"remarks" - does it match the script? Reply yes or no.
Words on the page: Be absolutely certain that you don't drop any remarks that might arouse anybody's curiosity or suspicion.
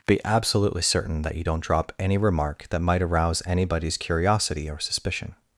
no